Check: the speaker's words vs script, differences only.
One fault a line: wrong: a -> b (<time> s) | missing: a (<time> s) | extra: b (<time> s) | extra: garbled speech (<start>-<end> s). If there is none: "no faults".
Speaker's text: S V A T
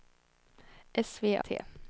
no faults